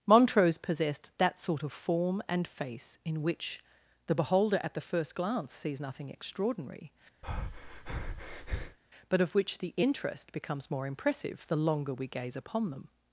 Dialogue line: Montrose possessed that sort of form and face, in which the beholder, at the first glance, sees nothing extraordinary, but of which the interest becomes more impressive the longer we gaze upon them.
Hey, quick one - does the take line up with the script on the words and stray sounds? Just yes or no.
no